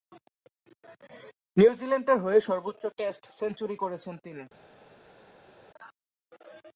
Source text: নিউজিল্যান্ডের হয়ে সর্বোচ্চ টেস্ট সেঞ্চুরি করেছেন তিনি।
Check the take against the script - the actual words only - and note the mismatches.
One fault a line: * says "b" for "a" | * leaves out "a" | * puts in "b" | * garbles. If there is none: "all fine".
all fine